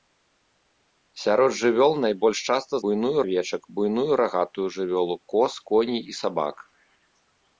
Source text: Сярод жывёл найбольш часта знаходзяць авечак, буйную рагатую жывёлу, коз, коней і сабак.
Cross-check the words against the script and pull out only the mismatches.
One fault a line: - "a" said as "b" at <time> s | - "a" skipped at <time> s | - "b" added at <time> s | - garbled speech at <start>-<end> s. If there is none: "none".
- "знаходзяць" said as "буйную" at 2.8 s